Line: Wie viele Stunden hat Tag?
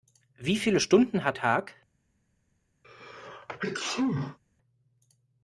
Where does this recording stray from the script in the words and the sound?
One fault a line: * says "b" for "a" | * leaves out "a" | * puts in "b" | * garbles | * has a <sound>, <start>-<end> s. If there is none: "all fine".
* has a sneeze, 2.8-4.4 s